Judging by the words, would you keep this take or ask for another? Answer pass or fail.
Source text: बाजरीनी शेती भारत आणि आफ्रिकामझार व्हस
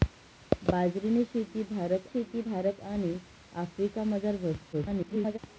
fail